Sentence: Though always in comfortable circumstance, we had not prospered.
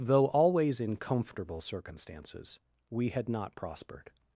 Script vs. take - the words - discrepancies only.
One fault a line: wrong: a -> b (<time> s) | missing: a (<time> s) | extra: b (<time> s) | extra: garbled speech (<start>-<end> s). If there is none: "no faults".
wrong: circumstance -> circumstances (1.6 s)